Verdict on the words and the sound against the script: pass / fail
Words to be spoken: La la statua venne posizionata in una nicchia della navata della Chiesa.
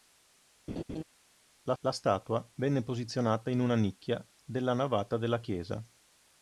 fail